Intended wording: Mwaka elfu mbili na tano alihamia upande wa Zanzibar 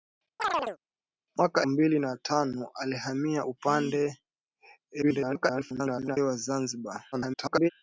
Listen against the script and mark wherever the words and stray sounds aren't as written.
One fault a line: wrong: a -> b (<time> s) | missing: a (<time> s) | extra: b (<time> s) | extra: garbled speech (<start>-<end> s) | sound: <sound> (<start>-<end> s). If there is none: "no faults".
sound: chirp (0.4-0.8 s)
missing: elfu (1.7 s)
extra: garbled speech (5.0-6.2 s)
extra: garbled speech (7.1-7.7 s)